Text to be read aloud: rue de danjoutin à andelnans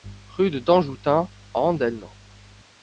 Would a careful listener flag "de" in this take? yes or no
no